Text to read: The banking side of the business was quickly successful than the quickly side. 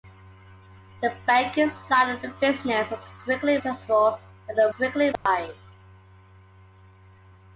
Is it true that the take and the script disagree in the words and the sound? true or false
true